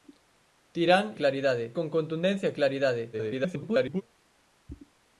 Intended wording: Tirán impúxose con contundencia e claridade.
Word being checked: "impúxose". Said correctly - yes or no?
no